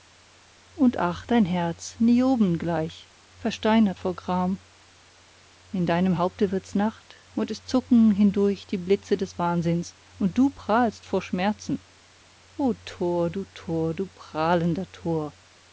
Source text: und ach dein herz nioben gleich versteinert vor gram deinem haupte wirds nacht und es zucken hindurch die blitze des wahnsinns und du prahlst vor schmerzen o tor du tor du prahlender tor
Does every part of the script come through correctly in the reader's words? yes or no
no